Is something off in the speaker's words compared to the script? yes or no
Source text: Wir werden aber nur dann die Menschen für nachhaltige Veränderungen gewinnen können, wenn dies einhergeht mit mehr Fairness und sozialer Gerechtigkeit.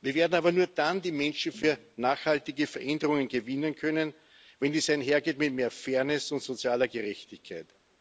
no